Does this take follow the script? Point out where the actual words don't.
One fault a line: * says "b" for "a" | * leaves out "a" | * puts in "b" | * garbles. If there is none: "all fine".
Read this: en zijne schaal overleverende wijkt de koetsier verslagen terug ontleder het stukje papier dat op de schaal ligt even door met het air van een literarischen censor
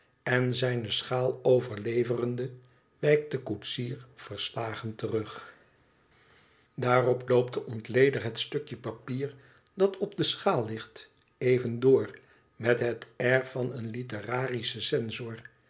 * puts in "daarop loopt de"